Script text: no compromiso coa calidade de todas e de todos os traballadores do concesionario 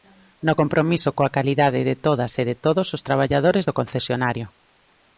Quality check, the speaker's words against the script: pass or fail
pass